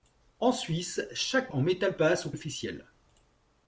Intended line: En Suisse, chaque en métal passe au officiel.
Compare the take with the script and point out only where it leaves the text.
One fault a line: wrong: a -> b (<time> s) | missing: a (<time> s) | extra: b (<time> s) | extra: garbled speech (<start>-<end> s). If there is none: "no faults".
no faults